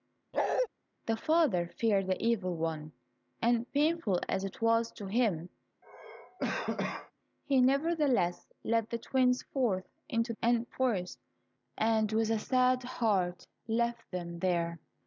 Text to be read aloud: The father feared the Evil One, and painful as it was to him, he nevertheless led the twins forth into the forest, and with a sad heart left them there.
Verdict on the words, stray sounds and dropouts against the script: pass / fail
fail